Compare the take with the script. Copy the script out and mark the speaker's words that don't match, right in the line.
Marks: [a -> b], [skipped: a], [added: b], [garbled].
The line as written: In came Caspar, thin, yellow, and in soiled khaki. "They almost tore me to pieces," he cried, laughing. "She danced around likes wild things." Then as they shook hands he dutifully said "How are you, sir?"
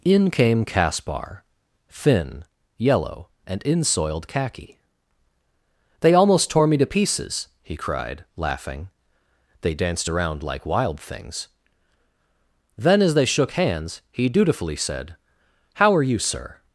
In came Caspar, thin, yellow, and in soiled khaki. "They almost tore me to pieces," he cried, laughing. ["She -> They] danced around [likes -> like] wild things." Then as they shook hands he dutifully said "How are you, sir?"